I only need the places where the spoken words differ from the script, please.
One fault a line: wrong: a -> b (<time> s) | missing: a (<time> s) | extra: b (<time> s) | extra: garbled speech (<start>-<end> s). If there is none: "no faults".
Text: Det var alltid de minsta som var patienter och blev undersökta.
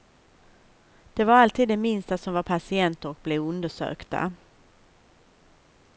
no faults